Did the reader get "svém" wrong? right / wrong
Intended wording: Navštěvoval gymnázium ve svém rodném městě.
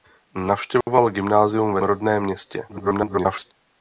wrong